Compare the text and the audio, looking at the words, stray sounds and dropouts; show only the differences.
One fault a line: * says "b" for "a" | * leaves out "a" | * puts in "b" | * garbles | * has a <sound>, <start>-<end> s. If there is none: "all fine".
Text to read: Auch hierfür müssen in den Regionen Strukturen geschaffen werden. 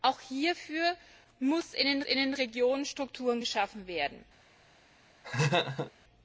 * puts in "in den"
* has a laugh, 5.2-5.9 s